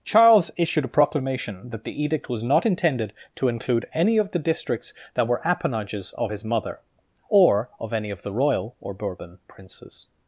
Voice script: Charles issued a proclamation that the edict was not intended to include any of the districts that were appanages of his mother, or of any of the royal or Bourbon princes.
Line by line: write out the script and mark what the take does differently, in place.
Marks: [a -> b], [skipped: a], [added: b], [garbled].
Charles issued a proclamation that the edict was not intended to include any of the districts that were appanages of his mother, or of any of the royal or Bourbon princes.